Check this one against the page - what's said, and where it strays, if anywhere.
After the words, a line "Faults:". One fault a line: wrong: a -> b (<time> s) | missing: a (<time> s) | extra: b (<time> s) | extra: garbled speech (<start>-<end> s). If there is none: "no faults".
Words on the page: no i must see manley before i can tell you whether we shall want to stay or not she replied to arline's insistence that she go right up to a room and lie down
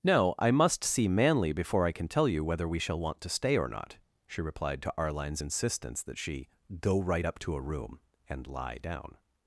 no i must see manley before i can tell you whether we shall want to stay or not she replied to arline's insistence that she go right up to a room and lie down
Faults:
no faults